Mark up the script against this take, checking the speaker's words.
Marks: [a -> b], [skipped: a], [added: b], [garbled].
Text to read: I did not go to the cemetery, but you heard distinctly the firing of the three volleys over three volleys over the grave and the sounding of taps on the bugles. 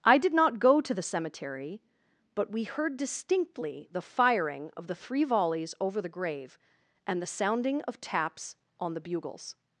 I did not go to the cemetery, but [you -> we] heard distinctly the firing of the three volleys over [skipped: three volleys over] the grave and the sounding of taps on the bugles.